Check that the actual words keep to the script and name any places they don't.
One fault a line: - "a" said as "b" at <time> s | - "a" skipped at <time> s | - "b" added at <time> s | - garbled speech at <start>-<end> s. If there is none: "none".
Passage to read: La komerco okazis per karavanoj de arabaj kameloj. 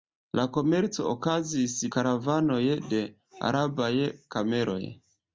- "per" skipped at 1.8 s